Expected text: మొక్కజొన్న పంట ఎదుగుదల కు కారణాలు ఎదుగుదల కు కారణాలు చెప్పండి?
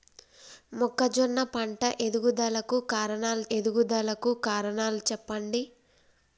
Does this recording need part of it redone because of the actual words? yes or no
no